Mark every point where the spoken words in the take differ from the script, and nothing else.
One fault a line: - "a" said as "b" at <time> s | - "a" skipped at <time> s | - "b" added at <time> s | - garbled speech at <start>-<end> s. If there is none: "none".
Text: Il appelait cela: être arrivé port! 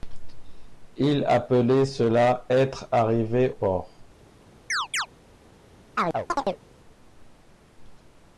none